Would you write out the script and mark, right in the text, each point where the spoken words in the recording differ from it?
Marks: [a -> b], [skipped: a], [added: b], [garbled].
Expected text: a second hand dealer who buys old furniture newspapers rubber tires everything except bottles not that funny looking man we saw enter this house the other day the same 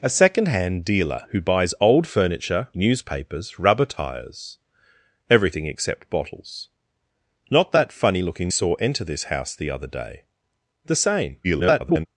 a second hand dealer who buys old furniture newspapers rubber tires everything except bottles not that funny looking [skipped: man we] saw enter this house the other day the same [garbled]